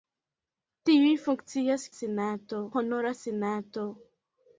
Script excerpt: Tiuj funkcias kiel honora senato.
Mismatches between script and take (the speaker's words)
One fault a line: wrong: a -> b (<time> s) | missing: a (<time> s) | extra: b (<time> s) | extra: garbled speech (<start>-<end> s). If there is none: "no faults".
wrong: kiel -> senato (2.0 s)